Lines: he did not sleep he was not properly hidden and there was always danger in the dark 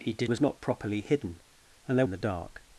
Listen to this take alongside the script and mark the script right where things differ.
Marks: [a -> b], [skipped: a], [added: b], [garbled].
he did [skipped: not sleep he] was not properly hidden and there [skipped: was always danger] in the dark